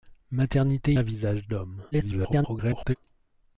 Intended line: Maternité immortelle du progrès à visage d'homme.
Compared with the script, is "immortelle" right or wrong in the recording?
wrong